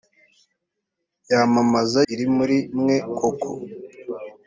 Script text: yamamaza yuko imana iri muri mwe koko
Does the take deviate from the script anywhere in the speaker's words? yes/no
yes